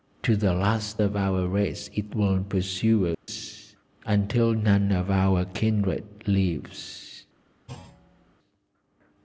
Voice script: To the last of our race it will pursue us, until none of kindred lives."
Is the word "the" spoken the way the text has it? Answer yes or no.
yes